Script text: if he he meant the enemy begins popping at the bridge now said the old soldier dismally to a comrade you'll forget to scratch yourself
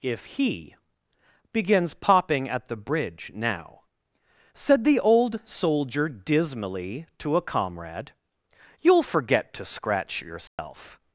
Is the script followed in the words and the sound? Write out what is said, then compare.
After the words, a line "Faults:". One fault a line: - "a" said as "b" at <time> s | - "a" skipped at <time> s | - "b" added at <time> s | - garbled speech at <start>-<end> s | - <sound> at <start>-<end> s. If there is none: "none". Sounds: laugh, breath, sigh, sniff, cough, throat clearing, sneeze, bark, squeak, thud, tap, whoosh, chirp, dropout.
if he begins popping at the bridge now said the old soldier dismally to a comrade you'll forget to scratch yourself
Faults:
- "he meant the enemy" skipped at 0.8 s
- dropout at 10.5-10.6 s